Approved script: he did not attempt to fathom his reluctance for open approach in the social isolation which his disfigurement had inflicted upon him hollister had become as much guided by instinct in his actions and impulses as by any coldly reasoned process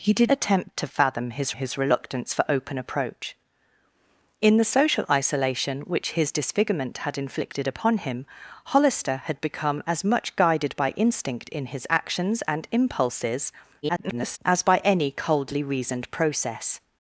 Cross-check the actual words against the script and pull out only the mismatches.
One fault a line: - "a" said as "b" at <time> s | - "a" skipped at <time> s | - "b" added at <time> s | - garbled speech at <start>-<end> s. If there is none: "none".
- "not" skipped at 0.3 s
- "his" added at 1.5 s
- garbled speech at 13.8-14.4 s